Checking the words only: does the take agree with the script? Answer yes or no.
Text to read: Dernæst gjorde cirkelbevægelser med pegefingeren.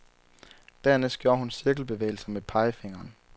no